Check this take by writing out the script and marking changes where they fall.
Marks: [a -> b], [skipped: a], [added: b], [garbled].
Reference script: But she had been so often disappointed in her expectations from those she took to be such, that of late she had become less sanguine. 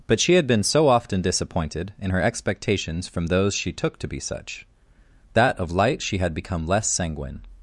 But she had been so often disappointed in her expectations from those she took to be such, that of [late -> light] she had become less sanguine.